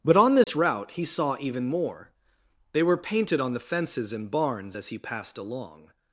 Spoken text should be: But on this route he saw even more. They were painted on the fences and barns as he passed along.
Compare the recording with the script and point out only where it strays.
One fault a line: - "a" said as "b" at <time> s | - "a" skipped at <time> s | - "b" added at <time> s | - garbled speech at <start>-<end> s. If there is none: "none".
none